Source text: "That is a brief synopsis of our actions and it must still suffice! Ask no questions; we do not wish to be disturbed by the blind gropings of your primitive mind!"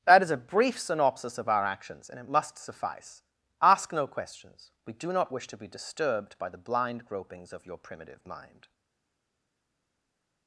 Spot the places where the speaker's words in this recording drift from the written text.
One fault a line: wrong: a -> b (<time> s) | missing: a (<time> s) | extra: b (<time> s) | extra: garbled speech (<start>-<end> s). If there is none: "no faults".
missing: still (2.6 s)